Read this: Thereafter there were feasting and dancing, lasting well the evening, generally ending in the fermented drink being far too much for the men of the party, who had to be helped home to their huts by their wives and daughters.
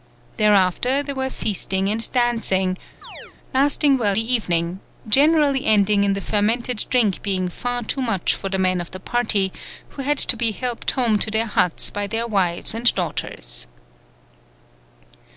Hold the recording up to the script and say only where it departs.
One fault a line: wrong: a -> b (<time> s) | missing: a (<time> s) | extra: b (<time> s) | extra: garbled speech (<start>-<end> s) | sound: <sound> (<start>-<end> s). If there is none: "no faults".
sound: chirp (3.0-3.4 s)